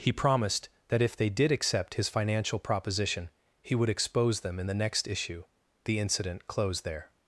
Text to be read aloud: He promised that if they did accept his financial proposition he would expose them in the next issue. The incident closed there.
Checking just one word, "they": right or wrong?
right